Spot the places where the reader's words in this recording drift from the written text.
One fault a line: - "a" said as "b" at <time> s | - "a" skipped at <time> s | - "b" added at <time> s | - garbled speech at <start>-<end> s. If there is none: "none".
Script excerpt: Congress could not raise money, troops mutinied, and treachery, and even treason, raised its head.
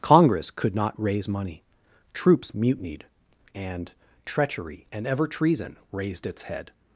- "even" said as "ever" at 5.0 s